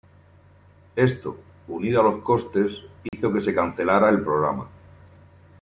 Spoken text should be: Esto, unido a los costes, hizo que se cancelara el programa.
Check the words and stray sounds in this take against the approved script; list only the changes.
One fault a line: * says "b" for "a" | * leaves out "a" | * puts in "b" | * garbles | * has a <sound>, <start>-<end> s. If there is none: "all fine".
* has a dropout, 3.1-3.1 s